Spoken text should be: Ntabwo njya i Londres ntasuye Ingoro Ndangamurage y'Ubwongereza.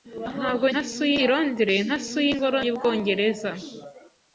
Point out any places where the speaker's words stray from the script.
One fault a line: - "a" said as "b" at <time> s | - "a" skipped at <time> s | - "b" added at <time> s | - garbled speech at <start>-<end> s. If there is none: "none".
- "njya" said as "ntasuye" at 0.7 s
- "Ndangamurage" skipped at 2.6 s